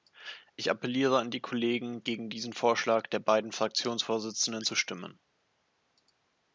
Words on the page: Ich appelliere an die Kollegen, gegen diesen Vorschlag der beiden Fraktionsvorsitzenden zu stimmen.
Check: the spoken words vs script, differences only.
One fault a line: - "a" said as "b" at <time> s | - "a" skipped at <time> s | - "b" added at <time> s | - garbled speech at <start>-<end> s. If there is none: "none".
none